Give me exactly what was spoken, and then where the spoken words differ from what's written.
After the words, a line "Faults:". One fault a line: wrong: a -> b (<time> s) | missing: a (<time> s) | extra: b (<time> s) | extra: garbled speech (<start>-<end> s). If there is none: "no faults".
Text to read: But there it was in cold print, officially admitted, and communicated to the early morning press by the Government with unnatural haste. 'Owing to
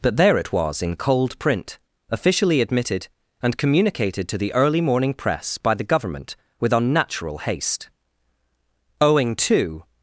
But there it was in cold print, officially admitted, and communicated to the early morning press by the Government with unnatural haste. 'Owing to
Faults:
no faults